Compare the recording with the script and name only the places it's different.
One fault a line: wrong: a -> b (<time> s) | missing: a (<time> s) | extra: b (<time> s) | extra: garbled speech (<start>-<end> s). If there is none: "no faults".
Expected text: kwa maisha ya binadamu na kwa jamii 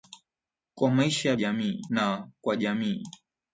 wrong: binadamu -> jamii (1.4 s)